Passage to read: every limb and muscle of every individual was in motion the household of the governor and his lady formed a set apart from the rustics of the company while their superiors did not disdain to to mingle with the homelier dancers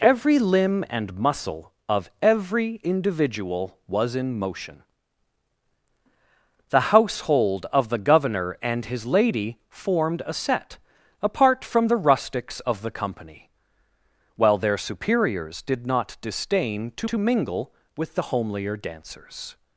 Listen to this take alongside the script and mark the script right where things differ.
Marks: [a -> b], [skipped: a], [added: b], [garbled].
every limb and muscle of every individual was in motion the household of the governor and his lady formed a set apart from the rustics of the company while their superiors did not disdain to to mingle with the homelier dancers